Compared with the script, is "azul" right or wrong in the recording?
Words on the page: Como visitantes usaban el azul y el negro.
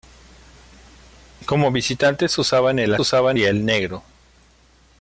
wrong